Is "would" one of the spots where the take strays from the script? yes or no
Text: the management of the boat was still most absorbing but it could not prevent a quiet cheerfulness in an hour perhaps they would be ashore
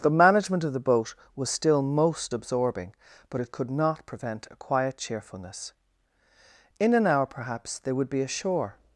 no